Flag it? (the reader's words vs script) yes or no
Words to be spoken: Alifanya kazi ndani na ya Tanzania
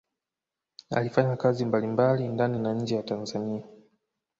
yes